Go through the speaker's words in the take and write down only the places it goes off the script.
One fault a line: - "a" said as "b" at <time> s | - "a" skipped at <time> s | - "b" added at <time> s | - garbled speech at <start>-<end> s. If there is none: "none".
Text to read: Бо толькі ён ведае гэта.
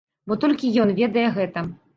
none